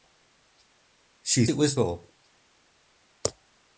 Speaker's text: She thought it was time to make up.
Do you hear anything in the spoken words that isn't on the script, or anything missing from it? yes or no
yes